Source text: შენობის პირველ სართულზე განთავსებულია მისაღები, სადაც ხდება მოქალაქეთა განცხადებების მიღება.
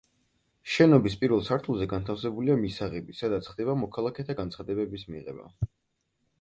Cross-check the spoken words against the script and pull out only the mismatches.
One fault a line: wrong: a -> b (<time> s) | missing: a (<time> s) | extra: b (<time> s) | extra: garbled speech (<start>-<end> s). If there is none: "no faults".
no faults